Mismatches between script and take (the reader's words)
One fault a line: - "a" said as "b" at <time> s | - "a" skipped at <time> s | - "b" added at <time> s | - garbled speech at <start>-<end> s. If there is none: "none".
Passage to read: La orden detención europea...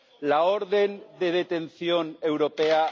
- "de" added at 1.2 s